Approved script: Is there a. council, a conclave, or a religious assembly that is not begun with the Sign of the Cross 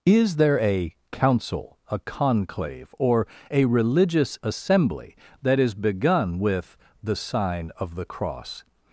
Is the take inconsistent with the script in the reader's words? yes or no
yes